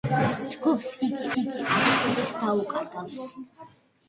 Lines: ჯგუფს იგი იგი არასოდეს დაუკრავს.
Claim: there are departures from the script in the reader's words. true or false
false